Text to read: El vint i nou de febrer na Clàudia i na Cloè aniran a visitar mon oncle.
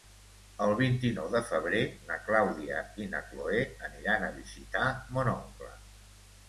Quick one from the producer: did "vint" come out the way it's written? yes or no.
yes